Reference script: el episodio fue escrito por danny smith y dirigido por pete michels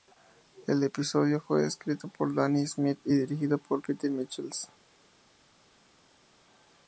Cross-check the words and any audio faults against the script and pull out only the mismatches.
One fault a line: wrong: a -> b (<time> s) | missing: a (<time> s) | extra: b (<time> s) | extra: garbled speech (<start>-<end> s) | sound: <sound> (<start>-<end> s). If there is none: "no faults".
no faults